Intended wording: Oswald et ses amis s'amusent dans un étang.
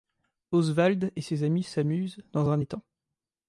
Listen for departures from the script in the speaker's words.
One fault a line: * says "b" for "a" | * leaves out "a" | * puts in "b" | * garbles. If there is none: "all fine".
all fine